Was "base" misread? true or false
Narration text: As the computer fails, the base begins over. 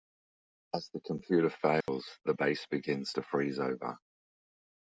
false